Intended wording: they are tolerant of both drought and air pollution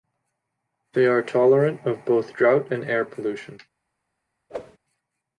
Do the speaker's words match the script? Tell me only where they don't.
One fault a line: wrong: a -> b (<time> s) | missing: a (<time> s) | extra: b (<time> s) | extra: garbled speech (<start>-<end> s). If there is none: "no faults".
no faults